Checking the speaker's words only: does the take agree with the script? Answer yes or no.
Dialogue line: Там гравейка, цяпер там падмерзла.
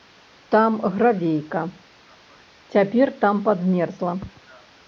yes